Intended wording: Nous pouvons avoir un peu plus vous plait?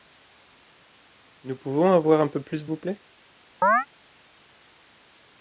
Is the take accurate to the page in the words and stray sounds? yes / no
no